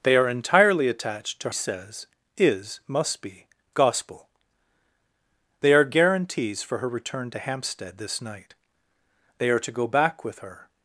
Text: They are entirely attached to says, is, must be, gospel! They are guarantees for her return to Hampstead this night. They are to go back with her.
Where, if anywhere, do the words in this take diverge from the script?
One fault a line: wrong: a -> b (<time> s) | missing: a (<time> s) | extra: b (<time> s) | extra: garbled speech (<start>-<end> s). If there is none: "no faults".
no faults